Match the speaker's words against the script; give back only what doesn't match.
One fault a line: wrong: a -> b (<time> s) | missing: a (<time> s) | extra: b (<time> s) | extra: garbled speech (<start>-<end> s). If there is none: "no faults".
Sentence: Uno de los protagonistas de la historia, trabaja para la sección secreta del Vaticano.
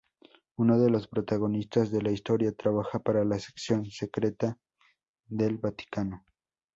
no faults